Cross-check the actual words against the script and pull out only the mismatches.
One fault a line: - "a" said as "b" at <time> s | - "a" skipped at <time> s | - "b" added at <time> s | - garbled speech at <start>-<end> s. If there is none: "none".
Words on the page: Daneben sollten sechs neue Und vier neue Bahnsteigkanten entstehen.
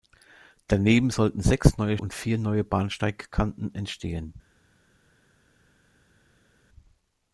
none